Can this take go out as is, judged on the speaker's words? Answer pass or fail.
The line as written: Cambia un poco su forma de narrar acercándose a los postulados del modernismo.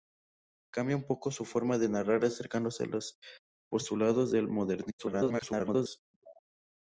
fail